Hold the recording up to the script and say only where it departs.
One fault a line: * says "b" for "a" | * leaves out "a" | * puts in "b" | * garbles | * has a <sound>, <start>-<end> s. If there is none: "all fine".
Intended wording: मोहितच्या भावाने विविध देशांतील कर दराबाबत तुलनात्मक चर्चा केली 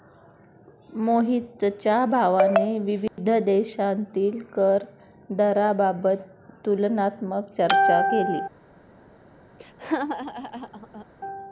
* has a dropout, 3.1-3.2 s
* has a laugh, 9.6-11.1 s